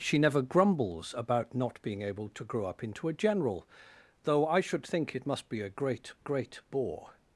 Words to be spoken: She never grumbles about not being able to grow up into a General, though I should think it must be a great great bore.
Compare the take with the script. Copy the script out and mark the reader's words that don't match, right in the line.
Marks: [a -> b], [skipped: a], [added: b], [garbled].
She never grumbles about not being able to grow up into a General, though I should think it must be a great great bore.